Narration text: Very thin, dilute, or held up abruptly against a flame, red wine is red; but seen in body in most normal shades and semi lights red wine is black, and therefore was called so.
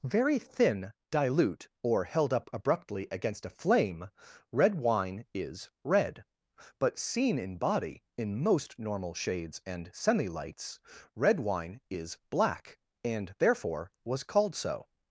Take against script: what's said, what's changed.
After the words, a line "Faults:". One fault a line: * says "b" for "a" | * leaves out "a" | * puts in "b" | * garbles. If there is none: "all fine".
Very thin, dilute, or held up abruptly against a flame, red wine is red; but seen in body in most normal shades and semi lights red wine is black, and therefore was called so.
Faults:
all fine